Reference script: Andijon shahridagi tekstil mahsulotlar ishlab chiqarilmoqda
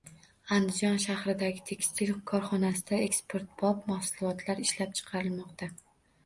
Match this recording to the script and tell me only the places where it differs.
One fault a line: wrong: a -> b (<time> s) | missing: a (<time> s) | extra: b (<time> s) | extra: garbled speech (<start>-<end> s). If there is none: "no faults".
extra: korxonasida eksportbop (2.3 s)